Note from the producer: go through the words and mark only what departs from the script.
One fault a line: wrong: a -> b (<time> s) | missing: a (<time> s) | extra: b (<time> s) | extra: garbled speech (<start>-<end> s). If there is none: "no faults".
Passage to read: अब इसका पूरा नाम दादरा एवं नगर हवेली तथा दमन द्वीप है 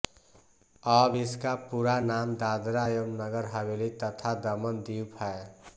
no faults